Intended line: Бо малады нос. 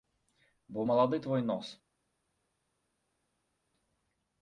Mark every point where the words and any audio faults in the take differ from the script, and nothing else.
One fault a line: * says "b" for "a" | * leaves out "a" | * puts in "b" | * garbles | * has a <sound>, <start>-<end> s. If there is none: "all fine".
* puts in "твой"